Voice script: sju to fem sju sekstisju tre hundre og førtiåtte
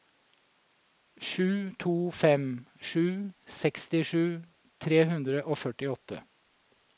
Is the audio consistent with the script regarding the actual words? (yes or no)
yes